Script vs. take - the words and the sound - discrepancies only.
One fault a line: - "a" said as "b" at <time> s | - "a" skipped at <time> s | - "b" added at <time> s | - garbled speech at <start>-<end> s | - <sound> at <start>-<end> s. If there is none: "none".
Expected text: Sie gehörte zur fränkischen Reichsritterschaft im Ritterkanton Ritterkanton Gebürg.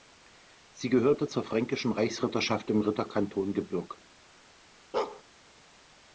- "Ritterkanton" skipped at 3.5 s
- bark at 4.9-5.2 s